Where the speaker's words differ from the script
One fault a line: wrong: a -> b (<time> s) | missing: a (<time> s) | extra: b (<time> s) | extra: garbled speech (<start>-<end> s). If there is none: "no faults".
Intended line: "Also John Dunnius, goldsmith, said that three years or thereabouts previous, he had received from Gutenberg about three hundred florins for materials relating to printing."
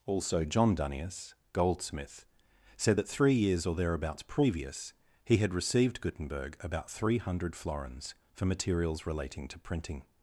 missing: from (6.0 s)